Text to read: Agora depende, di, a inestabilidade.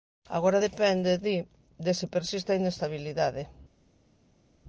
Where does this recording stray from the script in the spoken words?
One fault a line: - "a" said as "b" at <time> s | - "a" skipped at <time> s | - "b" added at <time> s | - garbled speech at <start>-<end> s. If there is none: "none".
- "de se persiste" added at 1.8 s